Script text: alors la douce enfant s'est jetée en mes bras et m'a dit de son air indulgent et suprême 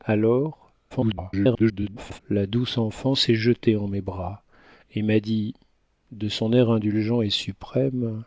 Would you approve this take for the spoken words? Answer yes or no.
no